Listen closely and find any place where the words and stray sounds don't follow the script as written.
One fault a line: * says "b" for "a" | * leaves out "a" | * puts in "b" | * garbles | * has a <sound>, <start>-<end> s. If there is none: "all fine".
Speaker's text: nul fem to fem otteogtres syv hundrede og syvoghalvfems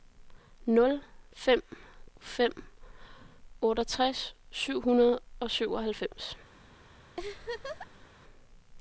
* leaves out "to"
* has a laugh, 7.2-8.1 s